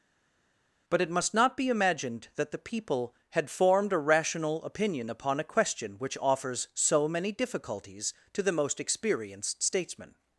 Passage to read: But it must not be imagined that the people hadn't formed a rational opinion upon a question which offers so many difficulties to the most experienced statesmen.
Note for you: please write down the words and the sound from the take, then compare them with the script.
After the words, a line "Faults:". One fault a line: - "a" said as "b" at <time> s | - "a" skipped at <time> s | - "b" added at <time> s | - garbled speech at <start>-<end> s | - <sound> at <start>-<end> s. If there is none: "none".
But it must not be imagined that the people had formed a rational opinion upon a question which offers so many difficulties to the most experienced statesmen.
Faults:
- "hadn't" said as "had" at 3.3 s